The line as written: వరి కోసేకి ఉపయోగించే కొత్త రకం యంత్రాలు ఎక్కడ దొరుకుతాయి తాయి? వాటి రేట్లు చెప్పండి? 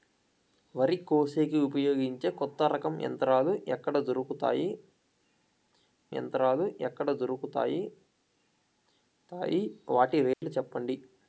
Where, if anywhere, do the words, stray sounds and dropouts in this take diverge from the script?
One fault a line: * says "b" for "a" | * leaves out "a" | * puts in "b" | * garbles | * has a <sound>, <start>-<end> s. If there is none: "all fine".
* puts in "యంత్రాలు ఎక్కడ దొరుకుతాయి"
* has a dropout, 10.3-10.4 s